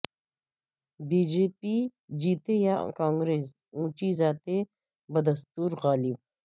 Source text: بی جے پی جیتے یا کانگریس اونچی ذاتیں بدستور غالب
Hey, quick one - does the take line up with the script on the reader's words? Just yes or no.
yes